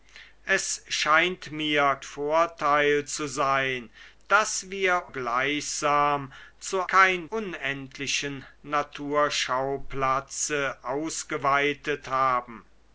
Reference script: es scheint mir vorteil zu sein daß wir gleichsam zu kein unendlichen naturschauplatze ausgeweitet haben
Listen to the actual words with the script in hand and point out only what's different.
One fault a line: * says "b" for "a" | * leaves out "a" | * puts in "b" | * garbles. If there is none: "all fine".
all fine